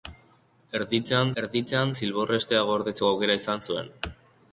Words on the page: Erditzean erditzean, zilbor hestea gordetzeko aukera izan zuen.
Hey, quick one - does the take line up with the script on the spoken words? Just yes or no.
yes